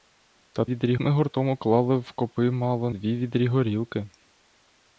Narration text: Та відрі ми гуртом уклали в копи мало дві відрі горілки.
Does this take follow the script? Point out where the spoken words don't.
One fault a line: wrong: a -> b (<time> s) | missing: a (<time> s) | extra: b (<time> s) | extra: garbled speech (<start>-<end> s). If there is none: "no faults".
no faults